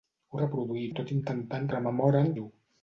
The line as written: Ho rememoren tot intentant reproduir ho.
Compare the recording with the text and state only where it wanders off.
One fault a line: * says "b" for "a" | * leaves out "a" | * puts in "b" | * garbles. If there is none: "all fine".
* says "reproduir" for "rememoren"
* says "rememoren" for "reproduir"